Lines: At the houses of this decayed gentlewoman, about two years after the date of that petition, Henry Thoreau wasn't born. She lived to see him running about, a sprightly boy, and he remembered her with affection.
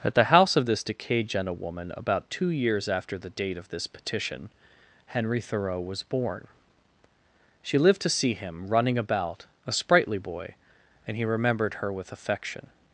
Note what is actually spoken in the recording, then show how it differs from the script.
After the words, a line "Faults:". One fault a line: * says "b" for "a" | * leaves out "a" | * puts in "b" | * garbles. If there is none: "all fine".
At the house of this decayed gentlewoman, about two years after the date of this petition, Henry Thoreau was born. She lived to see him running about, a sprightly boy, and he remembered her with affection.
Faults:
* says "house" for "houses"
* says "this" for "that"
* says "was" for "wasn't"